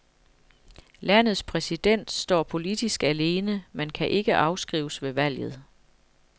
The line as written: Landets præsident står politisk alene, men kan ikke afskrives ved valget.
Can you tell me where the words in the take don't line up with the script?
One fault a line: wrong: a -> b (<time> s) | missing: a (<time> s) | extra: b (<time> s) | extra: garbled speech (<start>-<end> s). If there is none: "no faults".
no faults